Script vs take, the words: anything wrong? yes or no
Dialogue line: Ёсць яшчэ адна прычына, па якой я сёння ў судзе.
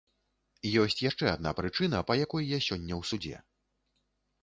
no